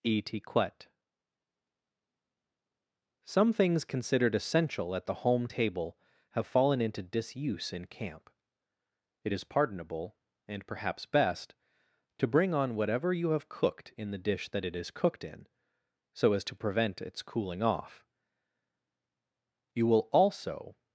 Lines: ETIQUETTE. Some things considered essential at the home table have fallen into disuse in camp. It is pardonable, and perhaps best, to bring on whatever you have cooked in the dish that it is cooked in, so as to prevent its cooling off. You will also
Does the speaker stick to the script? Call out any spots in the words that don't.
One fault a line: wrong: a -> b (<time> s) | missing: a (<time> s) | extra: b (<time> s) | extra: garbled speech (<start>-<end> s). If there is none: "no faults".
no faults